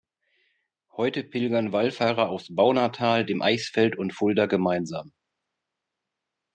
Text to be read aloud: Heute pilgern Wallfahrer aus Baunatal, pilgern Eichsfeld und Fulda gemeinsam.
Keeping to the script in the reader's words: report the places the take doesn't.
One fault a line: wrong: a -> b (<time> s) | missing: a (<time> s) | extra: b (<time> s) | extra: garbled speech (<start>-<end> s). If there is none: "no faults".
wrong: pilgern -> dem (3.2 s)